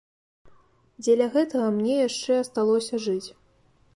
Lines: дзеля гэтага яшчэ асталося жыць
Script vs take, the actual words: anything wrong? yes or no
yes